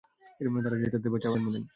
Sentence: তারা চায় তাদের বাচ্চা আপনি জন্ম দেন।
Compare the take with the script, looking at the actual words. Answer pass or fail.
fail